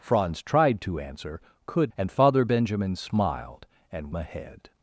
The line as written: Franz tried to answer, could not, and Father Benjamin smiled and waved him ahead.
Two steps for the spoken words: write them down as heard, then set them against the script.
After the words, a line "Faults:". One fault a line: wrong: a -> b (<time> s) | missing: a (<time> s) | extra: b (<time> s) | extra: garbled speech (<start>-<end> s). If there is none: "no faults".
Franz tried to answer, could and Father Benjamin smiled and ahead.
Faults:
missing: not (1.9 s)
missing: waved him (4.1 s)